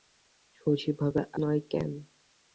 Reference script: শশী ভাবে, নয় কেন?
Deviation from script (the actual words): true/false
false